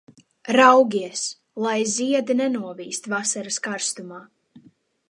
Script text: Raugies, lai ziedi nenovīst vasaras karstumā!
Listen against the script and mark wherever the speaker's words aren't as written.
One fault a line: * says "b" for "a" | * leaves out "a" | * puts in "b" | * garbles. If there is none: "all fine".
all fine